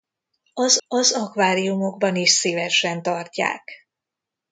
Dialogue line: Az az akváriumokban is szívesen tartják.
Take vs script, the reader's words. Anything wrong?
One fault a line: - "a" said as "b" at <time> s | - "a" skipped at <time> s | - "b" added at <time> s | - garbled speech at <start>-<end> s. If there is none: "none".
none